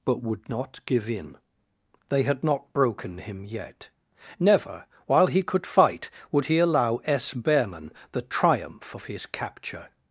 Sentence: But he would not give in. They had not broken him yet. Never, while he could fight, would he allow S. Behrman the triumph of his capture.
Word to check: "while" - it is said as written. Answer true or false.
true